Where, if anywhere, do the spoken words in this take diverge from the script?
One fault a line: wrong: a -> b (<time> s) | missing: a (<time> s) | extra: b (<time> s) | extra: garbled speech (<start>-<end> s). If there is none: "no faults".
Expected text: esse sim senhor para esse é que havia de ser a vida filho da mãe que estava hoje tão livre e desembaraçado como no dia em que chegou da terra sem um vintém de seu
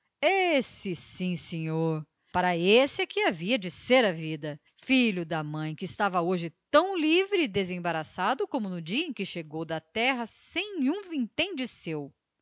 no faults